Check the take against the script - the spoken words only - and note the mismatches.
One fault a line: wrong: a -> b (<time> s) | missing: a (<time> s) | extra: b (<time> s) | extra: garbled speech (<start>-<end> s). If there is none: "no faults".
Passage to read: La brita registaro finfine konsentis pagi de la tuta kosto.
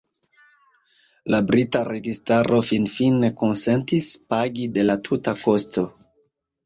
no faults